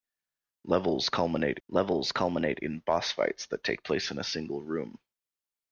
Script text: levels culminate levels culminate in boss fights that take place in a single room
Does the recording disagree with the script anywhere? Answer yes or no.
no